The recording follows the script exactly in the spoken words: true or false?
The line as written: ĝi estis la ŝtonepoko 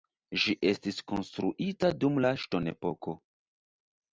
false